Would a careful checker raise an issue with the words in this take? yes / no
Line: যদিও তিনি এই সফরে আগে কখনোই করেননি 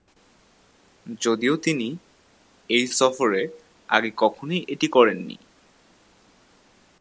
yes